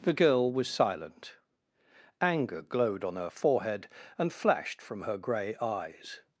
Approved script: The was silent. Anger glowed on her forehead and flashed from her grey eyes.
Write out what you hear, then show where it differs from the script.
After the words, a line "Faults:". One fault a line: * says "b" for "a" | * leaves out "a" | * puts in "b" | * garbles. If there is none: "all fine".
The girl was silent. Anger glowed on her forehead and flashed from her grey eyes.
Faults:
* puts in "girl"